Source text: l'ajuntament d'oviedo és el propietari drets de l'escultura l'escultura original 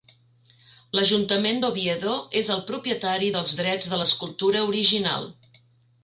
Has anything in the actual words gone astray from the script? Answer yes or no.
yes